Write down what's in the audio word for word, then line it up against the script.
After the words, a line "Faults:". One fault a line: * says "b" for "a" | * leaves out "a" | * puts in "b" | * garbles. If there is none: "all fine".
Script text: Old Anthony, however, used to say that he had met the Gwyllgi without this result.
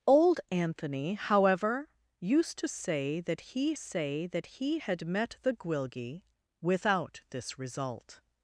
Old Anthony, however, used to say that he say that he had met the Gwyllgi without this result.
Faults:
* puts in "say that he"